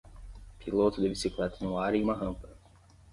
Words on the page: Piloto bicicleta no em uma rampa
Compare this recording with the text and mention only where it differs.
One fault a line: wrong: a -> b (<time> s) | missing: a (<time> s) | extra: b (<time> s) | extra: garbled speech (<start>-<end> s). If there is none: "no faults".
extra: de (1.0 s)
extra: ar (1.8 s)